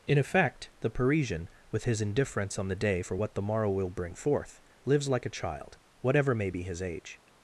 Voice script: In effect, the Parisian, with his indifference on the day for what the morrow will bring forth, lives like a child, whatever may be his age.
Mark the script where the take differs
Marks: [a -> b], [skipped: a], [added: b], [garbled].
In effect, the Parisian, with his indifference on the day for what the morrow will bring forth, lives like a child, whatever may be his age.